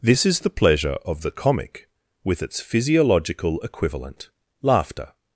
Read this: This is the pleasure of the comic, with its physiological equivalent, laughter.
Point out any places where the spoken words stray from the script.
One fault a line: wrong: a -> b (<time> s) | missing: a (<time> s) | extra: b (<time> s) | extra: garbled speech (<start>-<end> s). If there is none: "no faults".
no faults